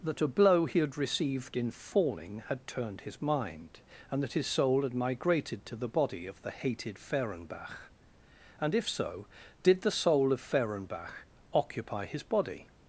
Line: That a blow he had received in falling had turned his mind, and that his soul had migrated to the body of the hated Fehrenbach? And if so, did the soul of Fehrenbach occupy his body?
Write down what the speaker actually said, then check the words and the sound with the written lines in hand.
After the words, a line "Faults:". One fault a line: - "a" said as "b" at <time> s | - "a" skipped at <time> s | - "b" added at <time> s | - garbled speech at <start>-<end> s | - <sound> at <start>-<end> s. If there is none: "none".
That a blow he had received in falling had turned his mind, and that his soul had migrated to the body of the hated Fehrenbach? And if so, did the soul of Fehrenbach occupy his body?
Faults:
none